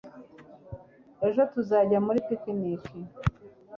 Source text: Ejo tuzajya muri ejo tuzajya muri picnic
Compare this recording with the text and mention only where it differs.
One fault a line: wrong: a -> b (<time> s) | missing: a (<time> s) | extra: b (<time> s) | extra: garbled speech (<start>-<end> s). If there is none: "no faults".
missing: ejo tuzajya muri (2.2 s)